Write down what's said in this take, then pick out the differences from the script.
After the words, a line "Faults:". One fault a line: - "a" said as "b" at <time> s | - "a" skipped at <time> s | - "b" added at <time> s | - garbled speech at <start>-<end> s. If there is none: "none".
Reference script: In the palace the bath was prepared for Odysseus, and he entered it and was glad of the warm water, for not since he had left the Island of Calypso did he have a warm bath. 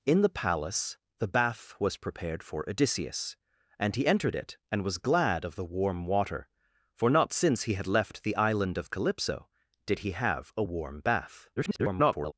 In the palace the bath was prepared for Odysseus, and he entered it and was glad of the warm water, for not since he had left the Island of Calypso did he have a warm bath. [garbled]
Faults:
- garbled speech at 11.6-12.3 s